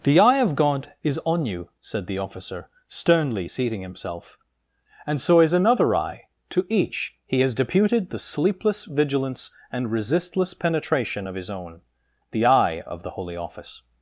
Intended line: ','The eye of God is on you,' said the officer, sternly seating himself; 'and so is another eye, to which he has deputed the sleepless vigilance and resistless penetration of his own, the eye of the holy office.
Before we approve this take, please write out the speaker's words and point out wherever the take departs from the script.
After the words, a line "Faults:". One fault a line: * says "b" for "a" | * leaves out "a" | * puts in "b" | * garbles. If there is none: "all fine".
','The eye of God is on you,' said the officer, sternly seating himself; 'and so is another eye, to each he has deputed the sleepless vigilance and resistless penetration of his own, the eye of the holy office.
Faults:
* says "each" for "which"